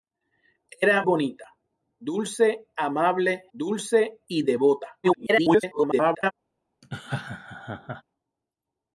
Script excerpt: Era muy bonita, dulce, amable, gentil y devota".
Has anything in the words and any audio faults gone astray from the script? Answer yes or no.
yes